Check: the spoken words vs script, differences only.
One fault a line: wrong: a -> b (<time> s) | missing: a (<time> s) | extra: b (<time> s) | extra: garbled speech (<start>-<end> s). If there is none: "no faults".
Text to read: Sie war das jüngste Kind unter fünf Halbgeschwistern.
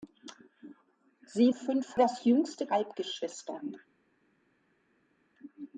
wrong: war -> fünf (1.5 s)
missing: Kind unter fünf (2.7 s)